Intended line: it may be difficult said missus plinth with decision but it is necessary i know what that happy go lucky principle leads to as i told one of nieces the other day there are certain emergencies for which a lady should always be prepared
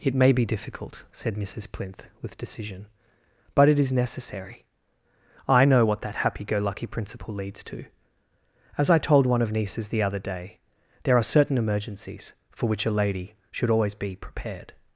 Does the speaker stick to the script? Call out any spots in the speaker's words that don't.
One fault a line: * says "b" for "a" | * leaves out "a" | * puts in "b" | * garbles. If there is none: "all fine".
all fine